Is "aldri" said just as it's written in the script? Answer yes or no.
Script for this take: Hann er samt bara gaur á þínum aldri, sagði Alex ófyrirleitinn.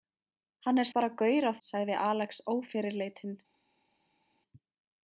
no